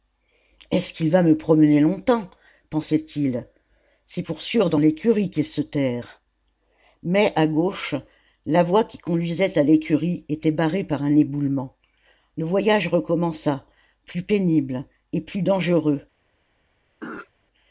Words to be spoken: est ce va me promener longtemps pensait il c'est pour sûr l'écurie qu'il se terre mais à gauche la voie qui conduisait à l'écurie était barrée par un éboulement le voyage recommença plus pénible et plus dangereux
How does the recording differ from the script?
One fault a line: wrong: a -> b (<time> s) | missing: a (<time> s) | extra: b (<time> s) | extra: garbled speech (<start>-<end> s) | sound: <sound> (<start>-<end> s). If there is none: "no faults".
extra: qu'il (0.9 s)
extra: dans (4.7 s)
sound: throat clearing (17.0-17.3 s)